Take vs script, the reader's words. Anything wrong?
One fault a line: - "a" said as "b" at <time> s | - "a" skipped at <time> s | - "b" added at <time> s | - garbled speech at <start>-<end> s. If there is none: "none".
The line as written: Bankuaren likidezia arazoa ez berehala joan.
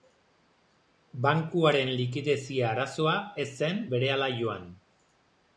- "zen" added at 3.6 s